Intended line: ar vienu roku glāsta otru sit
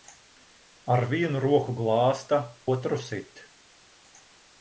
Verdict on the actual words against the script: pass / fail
pass